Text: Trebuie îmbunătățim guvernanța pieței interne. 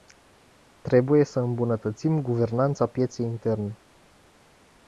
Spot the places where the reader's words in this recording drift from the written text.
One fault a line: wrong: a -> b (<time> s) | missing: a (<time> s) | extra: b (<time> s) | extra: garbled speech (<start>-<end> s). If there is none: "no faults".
extra: să (1.2 s)